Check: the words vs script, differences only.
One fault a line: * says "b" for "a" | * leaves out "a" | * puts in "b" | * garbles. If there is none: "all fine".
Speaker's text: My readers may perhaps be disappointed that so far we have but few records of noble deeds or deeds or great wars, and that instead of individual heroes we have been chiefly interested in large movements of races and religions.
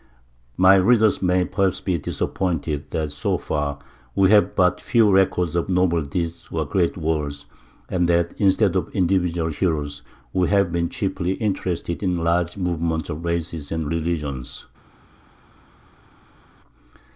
* leaves out "deeds or"